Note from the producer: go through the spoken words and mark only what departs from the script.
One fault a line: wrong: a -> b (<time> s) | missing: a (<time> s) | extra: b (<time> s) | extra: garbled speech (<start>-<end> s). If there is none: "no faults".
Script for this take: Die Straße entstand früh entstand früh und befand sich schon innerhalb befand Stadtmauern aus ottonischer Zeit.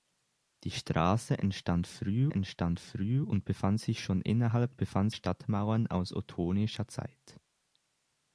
no faults